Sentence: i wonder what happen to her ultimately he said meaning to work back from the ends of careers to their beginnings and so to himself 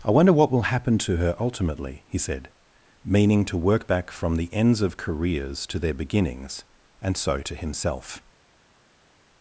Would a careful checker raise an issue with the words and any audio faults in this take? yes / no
yes